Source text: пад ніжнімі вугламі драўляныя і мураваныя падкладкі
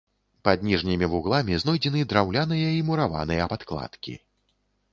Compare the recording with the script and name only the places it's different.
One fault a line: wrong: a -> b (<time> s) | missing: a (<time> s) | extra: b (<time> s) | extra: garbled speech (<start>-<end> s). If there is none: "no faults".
extra: знойдзены (1.6 s)